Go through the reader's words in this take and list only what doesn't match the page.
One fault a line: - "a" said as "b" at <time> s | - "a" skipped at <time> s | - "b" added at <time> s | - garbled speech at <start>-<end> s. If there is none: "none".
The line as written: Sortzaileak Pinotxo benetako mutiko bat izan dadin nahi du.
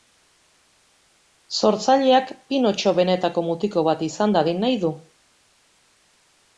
none